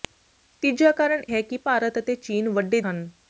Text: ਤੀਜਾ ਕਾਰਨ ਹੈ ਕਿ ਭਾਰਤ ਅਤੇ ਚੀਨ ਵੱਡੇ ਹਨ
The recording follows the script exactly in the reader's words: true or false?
true